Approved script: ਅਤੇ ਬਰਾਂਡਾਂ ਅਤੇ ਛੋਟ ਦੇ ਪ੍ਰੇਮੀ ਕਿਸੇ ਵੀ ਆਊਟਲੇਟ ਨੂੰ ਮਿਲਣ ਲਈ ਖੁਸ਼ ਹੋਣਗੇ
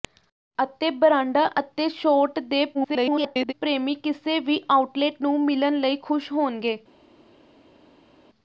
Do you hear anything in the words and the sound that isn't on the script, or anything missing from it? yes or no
yes